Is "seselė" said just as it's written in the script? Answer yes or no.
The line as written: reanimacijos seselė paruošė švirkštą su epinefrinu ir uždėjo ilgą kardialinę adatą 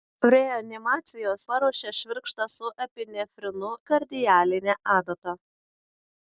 no